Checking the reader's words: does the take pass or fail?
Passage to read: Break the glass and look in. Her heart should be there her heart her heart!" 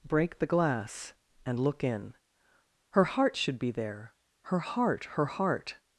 pass